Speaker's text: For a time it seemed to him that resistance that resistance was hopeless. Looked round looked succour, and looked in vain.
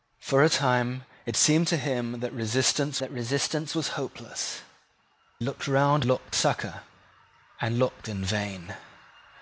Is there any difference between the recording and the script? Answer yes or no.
no